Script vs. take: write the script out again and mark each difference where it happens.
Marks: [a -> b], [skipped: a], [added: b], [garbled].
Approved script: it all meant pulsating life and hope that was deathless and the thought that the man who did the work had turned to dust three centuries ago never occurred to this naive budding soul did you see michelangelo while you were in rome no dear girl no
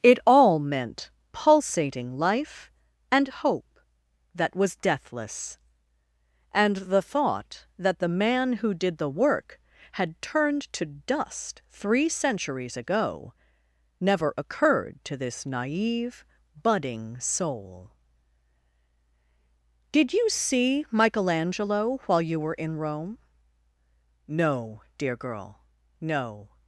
it all meant pulsating life and hope that was deathless and the thought that the man who did the work had turned to dust three centuries ago never occurred to this naive budding soul did you see michelangelo while you were in rome no dear girl no